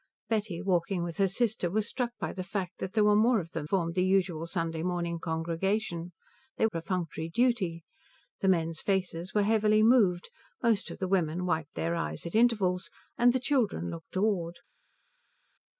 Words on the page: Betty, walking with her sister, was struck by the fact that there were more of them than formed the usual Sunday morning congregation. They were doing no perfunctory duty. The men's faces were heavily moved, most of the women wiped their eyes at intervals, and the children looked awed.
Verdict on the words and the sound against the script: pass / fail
fail